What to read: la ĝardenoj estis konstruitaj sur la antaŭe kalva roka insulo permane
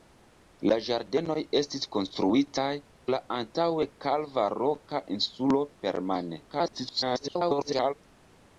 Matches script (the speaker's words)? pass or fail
fail